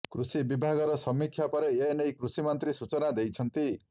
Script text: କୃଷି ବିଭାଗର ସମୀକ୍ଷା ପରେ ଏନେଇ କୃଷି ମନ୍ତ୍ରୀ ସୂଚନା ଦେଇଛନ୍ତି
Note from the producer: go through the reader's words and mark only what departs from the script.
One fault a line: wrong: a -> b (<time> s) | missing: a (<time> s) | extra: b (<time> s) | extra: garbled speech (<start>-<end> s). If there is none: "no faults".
no faults